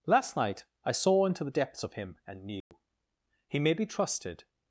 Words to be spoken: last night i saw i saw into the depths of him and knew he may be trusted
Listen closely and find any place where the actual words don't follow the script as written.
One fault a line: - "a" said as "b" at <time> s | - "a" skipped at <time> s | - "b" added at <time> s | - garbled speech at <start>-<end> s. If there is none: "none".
- "i saw" skipped at 1.3 s